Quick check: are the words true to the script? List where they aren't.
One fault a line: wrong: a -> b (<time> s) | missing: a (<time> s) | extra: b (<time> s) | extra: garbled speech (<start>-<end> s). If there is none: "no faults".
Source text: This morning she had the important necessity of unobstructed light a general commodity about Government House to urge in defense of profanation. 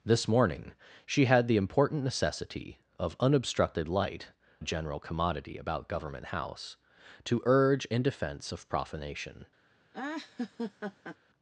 no faults